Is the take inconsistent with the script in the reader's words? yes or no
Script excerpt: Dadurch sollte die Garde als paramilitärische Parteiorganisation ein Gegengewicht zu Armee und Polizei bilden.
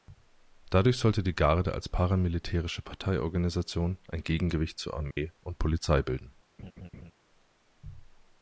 no